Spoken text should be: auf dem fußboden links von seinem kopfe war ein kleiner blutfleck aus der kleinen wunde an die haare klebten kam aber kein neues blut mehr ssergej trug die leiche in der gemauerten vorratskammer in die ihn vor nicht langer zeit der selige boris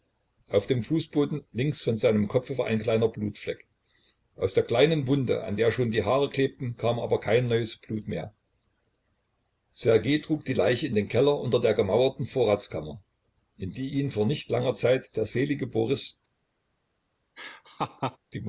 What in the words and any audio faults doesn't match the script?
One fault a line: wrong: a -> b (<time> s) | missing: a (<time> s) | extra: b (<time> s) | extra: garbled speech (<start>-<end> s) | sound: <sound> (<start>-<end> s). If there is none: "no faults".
extra: der schon (5.5 s)
extra: den keller unter (10.9 s)
sound: laugh (17.4-18.2 s)